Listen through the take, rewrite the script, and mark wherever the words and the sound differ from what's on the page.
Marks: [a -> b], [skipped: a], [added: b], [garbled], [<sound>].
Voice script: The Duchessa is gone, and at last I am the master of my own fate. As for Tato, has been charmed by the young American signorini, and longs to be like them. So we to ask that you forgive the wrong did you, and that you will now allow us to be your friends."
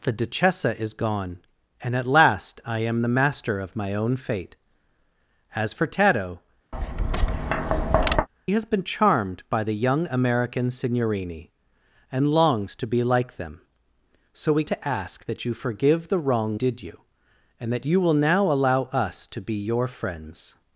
The Duchessa is gone, and at last I am the master of my own fate. As for Tato, [tap] has been charmed by the young American signorini, and longs to be like them. So we to ask that you forgive the wrong did you, and that you will now allow us to be your friends."